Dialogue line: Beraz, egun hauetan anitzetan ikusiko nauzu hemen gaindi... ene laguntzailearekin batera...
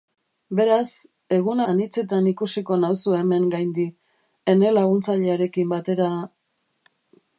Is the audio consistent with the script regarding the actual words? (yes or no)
no